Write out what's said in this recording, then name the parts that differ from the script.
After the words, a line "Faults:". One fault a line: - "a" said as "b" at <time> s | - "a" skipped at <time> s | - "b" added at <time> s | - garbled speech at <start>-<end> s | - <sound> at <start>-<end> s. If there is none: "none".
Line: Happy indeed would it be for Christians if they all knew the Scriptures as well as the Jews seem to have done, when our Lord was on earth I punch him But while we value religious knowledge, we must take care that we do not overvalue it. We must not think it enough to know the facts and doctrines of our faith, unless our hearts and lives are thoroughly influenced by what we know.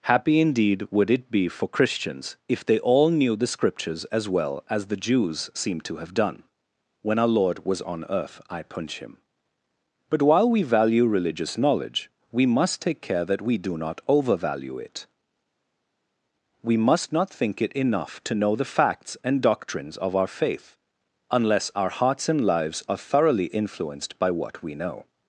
Happy indeed would it be for Christians if they all knew the Scriptures as well as the Jews seem to have done, when our Lord was on earth I punch him But while we value religious knowledge, we must take care that we do not overvalue it. We must not think it enough to know the facts and doctrines of our faith, unless our hearts and lives are thoroughly influenced by what we know.
Faults:
none